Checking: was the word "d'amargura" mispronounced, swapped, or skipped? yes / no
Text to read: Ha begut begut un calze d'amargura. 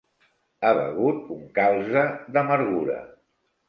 no